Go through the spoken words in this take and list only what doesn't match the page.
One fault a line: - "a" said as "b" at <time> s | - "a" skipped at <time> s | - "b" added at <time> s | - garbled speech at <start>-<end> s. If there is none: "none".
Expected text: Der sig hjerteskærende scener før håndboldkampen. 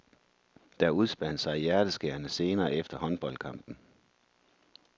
- "udspandt" added at 0.9 s
- "før" said as "efter" at 2.7 s